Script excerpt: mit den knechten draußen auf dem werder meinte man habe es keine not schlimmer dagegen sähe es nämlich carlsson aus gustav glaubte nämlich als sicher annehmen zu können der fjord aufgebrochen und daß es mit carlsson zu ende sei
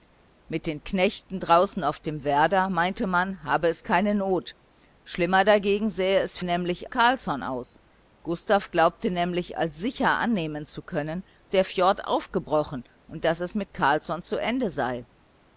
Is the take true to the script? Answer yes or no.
yes